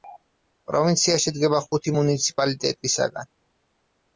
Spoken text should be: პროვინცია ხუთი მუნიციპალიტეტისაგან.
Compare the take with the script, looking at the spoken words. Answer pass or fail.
fail